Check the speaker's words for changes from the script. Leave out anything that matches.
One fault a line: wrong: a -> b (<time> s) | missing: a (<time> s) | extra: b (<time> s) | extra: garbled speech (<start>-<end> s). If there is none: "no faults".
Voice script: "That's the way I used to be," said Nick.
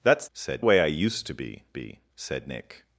wrong: the -> said (0.3 s)
extra: be (1.7 s)